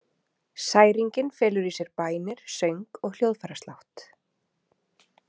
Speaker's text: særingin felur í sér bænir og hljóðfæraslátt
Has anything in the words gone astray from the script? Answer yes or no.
yes